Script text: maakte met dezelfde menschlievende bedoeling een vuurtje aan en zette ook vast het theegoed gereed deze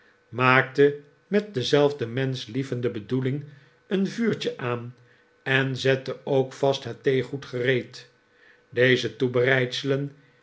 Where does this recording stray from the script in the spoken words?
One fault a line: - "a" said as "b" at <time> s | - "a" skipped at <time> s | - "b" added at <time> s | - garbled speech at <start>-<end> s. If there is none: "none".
none